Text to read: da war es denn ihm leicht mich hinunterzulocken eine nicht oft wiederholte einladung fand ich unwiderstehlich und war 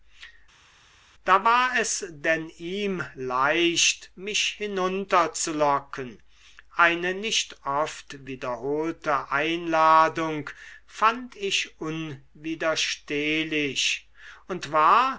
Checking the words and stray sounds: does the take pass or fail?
pass